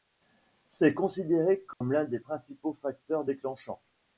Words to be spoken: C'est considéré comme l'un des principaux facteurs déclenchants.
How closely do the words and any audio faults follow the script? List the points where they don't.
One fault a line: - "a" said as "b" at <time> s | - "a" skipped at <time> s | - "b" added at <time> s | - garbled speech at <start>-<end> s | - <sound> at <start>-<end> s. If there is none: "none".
- dropout at 1.7-1.8 s